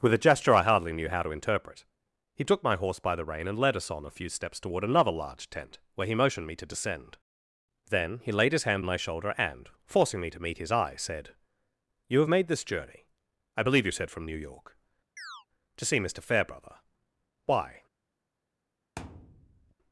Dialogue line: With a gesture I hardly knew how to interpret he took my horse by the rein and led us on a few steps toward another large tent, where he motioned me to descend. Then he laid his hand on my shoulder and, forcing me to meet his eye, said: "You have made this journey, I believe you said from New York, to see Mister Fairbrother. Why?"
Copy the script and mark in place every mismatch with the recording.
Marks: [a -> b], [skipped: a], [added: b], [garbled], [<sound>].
With a gesture I hardly knew how to interpret he took my horse by the rein and led us on a few steps toward another large tent, where he motioned me to descend. Then he laid his hand [skipped: on] my shoulder and, forcing me to meet his eye, said: "You have made this journey, I believe you said from New York, [chirp] to see Mister Fairbrother. Why?" [thud]